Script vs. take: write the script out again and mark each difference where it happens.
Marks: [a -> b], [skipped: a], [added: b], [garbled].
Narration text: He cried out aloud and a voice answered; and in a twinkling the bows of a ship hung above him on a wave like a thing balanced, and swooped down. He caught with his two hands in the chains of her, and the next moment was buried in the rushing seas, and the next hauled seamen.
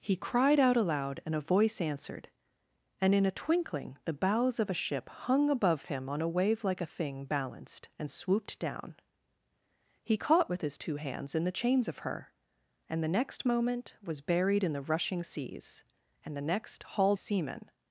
He cried out aloud and a voice answered; and in a twinkling the bows of a ship hung above him on a wave like a thing balanced, and swooped down. He caught with his two hands in the chains of her, and the next moment was buried in the rushing seas, and the next hauled seamen.